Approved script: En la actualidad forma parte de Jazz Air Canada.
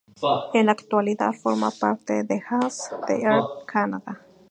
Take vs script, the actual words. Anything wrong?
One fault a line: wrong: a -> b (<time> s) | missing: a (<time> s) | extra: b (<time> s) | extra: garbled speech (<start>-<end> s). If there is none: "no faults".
extra: de (3.1 s)